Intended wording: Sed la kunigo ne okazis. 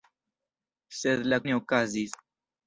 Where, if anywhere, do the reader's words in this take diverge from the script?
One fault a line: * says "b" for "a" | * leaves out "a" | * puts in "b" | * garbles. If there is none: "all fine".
* leaves out "kunigo"